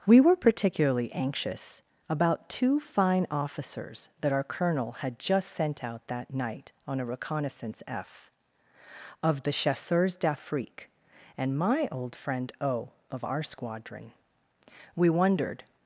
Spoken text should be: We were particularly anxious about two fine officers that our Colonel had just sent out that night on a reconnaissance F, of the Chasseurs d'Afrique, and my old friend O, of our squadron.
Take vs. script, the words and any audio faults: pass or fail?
fail